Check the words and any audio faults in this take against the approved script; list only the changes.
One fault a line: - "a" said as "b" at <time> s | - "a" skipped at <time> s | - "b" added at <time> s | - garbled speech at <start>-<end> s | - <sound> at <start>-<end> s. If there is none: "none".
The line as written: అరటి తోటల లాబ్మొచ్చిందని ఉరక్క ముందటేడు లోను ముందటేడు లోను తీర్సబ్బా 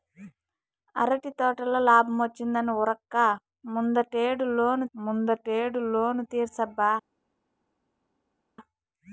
none